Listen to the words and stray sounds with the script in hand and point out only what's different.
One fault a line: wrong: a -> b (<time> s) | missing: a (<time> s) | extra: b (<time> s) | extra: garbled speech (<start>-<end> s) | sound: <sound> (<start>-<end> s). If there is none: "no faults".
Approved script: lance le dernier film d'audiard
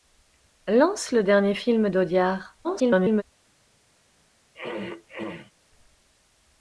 extra: garbled speech (2.6-3.2 s)
sound: throat clearing (4.5-5.5 s)